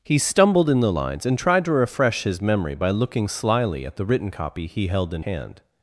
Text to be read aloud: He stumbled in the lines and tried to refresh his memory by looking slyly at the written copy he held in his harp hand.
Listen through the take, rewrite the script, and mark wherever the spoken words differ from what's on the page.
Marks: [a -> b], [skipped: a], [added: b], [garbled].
He stumbled in the lines and tried to refresh his memory by looking slyly at the written copy he held in [skipped: his harp] hand.